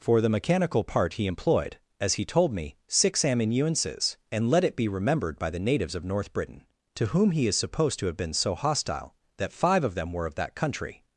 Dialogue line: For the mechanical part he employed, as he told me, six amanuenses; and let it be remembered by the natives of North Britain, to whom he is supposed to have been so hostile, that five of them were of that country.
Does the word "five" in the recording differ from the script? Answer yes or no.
no